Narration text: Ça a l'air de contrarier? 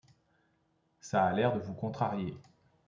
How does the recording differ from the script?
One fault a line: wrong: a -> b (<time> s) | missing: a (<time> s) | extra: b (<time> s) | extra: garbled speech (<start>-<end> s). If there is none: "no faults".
extra: vous (1.6 s)